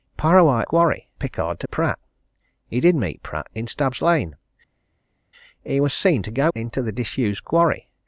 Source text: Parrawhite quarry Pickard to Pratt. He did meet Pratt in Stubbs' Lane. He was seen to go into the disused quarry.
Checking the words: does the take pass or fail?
pass